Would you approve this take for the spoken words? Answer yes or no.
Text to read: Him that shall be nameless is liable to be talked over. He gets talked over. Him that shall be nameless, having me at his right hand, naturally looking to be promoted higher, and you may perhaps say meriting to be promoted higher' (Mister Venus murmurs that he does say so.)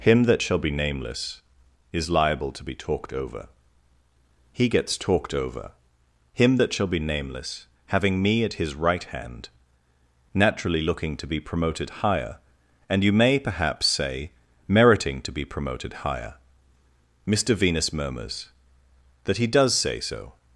yes